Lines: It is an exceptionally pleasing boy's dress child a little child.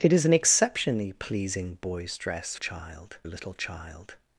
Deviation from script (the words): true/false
false